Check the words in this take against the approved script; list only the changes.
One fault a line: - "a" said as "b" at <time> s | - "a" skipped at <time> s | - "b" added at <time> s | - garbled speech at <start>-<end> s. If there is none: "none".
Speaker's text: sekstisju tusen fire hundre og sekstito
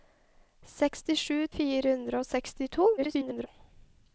- "tusen" skipped at 1.4 s
- garbled speech at 3.0-3.5 s